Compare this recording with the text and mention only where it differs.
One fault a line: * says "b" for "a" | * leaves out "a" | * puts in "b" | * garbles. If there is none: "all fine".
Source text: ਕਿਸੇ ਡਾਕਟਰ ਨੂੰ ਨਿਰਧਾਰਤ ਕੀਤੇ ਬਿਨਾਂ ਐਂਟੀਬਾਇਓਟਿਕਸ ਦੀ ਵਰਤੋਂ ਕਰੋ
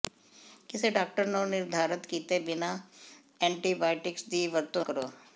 all fine